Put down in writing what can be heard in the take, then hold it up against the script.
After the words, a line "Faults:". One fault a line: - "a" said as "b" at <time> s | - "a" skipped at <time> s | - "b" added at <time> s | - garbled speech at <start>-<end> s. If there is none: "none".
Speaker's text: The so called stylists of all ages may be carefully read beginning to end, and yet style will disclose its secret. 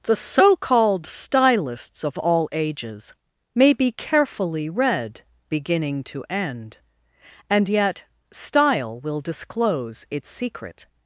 The so called stylists of all ages may be carefully read beginning to end, and yet style will disclose its secret.
Faults:
none